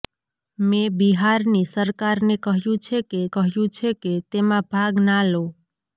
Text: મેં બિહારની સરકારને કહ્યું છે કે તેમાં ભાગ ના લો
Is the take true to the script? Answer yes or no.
no